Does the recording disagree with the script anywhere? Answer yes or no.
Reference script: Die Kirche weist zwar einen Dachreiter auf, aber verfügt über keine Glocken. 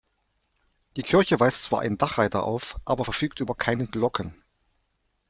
no